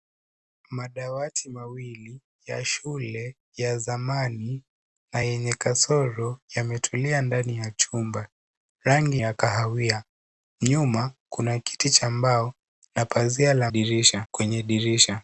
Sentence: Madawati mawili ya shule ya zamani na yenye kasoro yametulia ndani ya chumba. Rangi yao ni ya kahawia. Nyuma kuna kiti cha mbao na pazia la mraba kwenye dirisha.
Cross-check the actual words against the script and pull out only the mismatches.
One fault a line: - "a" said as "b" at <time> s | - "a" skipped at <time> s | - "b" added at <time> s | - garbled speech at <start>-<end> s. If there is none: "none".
- "yao ni" skipped at 9.2 s
- "mraba" said as "dirisha" at 13.7 s